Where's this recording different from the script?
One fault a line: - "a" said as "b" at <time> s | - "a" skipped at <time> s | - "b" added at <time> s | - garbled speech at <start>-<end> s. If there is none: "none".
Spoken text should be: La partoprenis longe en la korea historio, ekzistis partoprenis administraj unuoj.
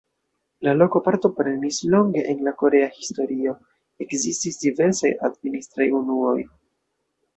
- "loko" added at 0.8 s
- "partoprenis" said as "diversaj" at 4.7 s